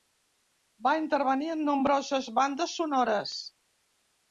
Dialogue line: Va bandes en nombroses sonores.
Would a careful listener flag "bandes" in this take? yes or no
yes